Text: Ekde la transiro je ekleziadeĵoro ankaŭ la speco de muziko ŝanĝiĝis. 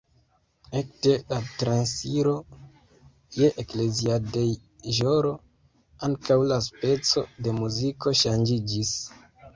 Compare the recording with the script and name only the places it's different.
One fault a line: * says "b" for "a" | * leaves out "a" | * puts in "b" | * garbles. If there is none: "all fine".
all fine